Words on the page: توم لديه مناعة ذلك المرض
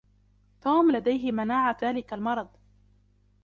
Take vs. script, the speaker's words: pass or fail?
pass